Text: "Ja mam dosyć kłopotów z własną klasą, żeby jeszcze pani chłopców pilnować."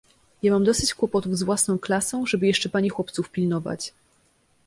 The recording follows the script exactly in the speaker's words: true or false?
true